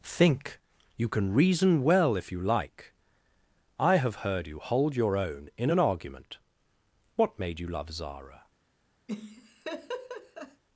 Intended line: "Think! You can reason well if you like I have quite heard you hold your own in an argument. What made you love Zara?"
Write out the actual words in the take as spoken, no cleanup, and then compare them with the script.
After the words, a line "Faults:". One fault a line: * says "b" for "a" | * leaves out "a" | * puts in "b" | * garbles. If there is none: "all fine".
"Think! You can reason well if you like I have heard you hold your own in an argument. What made you love Zara?"
Faults:
* leaves out "quite"